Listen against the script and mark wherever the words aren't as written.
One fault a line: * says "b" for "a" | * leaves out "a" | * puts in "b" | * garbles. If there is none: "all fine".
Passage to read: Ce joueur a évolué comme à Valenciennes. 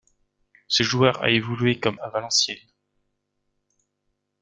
all fine